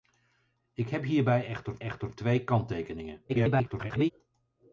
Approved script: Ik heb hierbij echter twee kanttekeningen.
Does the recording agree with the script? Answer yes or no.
no